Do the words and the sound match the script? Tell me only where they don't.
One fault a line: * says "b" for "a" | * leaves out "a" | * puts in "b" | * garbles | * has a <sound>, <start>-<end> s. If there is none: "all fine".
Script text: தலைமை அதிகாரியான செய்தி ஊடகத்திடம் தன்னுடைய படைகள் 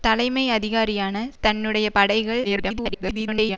* leaves out "செய்தி ஊடகத்திடம்"
* garbles